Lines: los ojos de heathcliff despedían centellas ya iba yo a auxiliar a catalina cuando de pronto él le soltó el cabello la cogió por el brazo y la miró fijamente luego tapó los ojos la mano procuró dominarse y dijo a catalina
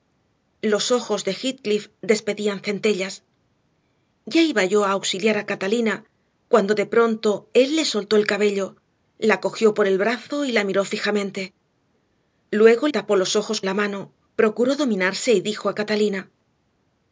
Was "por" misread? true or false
false